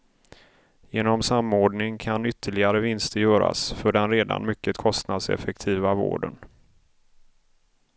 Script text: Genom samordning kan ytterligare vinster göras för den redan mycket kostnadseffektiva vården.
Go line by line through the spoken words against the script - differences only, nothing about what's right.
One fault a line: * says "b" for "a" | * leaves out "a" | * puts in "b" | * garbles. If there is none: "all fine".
all fine